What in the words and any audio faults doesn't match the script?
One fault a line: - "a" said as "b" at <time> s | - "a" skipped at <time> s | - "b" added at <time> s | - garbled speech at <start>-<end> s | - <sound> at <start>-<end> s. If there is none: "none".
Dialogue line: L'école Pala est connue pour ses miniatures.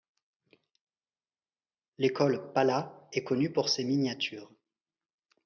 none